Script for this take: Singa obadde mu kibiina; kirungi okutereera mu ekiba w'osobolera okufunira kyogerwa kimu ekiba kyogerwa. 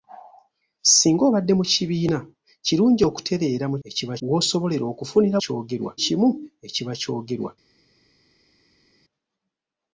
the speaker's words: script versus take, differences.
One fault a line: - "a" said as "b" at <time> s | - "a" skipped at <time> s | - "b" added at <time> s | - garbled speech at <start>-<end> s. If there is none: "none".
none